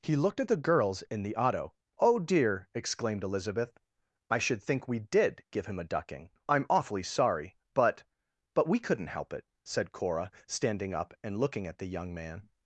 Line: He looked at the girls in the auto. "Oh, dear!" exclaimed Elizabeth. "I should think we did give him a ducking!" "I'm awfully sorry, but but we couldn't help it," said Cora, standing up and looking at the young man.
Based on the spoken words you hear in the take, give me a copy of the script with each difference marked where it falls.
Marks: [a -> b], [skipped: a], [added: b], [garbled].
He looked at the girls in the auto. "Oh, dear!" exclaimed Elizabeth. "I should think we did give him a ducking!" "I'm awfully sorry, but but we couldn't help it," said Cora, standing up and looking at the young man.